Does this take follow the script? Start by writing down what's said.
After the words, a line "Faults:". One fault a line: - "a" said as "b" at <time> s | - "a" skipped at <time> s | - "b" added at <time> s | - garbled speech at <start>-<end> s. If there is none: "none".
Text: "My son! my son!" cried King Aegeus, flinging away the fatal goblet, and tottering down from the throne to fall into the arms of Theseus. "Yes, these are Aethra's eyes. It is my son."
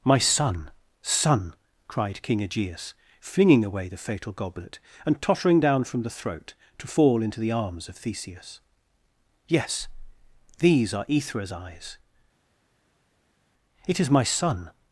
"My son! son!" cried King Aegeus, flinging away the fatal goblet, and tottering down from the throat to fall into the arms of Theseus. "Yes, these are Aethra's eyes. It is my son."
Faults:
- "my" skipped at 0.7 s
- "throne" said as "throat" at 6.1 s